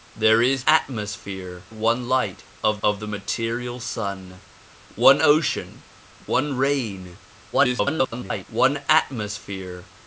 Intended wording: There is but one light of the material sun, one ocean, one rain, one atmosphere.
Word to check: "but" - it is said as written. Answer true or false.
false